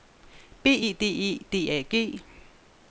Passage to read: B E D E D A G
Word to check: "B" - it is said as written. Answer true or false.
true